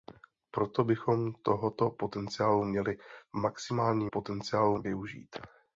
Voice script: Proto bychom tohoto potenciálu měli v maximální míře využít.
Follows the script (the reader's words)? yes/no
no